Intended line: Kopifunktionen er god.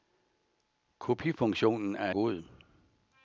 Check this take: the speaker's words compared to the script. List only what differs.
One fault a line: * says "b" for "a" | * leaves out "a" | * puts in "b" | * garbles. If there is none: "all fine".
all fine